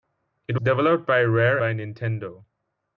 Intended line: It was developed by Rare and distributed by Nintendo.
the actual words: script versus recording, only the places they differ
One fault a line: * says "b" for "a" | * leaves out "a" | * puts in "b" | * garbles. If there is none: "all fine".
* leaves out "was"
* leaves out "and distributed"